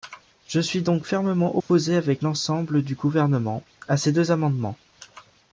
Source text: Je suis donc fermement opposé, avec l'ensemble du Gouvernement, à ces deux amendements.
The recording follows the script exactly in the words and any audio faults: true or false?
false